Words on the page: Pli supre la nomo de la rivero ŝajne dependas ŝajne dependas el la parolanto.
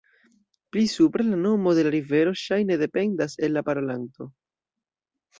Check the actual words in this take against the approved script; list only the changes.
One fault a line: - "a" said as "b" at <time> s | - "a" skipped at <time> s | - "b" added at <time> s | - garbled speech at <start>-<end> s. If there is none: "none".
- "ŝajne dependas" skipped at 3.4 s